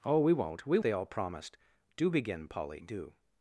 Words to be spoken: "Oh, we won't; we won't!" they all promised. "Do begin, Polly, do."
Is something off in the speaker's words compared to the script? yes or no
yes